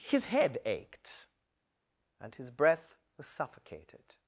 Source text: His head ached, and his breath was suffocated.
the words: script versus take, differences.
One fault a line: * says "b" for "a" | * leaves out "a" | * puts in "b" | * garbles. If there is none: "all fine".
all fine